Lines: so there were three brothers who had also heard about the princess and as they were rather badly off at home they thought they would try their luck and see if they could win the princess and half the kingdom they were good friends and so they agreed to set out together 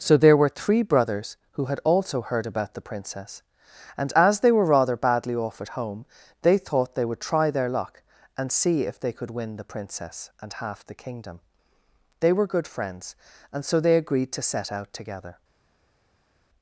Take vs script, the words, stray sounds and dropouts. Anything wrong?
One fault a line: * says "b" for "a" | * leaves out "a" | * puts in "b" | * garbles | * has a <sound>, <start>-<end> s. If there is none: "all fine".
all fine